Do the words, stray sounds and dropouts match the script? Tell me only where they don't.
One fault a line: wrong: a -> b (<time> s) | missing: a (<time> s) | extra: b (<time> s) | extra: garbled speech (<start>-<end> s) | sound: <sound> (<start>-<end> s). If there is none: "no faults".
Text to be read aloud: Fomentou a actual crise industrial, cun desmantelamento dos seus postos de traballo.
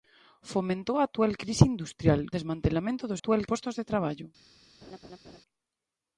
missing: cun (2.2 s)
wrong: seus -> actual (3.2 s)
sound: laugh (4.8-5.4 s)